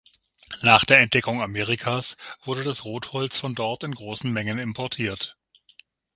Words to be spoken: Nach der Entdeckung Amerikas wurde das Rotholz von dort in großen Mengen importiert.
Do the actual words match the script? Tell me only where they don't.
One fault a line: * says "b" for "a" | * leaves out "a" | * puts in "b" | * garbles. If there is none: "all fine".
all fine